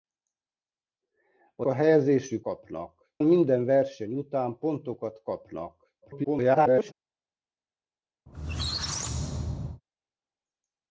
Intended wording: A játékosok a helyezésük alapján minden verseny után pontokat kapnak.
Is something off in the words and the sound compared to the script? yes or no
yes